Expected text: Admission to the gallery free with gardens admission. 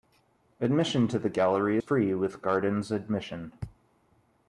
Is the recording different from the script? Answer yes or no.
no